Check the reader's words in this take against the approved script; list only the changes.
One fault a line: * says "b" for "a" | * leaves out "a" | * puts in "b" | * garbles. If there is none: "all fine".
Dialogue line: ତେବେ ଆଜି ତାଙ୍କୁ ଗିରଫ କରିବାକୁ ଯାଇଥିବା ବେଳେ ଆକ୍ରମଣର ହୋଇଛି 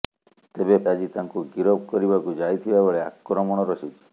all fine